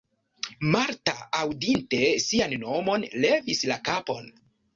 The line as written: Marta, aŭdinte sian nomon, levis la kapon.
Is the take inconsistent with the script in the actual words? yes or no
no